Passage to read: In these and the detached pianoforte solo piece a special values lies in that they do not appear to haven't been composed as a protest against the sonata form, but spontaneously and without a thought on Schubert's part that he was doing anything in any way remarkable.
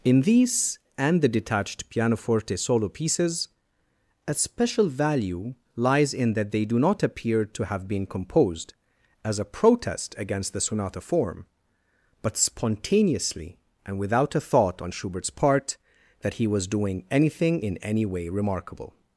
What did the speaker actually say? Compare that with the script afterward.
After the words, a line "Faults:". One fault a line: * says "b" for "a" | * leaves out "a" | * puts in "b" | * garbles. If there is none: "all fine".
In these and the detached pianoforte solo pieces a special value lies in that they do not appear to have been composed as a protest against the sonata form, but spontaneously and without a thought on Schubert's part that he was doing anything in any way remarkable.
Faults:
* says "pieces" for "piece"
* says "value" for "values"
* says "have" for "haven't"